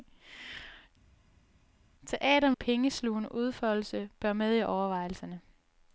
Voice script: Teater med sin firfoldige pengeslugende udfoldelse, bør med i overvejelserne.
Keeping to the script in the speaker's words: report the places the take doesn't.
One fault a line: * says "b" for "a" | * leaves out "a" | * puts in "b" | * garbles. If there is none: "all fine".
* leaves out "med sin firfoldige"